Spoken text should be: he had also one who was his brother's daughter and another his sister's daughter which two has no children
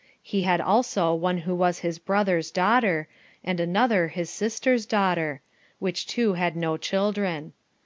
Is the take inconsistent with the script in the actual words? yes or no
yes